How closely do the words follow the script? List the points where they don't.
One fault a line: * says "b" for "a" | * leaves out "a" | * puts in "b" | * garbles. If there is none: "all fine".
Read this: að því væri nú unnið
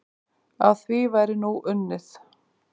all fine